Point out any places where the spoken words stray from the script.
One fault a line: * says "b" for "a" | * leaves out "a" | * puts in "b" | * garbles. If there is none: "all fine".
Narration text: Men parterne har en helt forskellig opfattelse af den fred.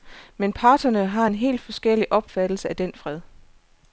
all fine